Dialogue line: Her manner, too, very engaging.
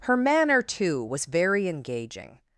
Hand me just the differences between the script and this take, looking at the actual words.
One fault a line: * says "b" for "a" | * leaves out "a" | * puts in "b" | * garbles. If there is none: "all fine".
* puts in "was"